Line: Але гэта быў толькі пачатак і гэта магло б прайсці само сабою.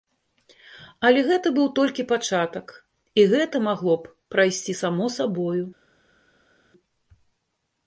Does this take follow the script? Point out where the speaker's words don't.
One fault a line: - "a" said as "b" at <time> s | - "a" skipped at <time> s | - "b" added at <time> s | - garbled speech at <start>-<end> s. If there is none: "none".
none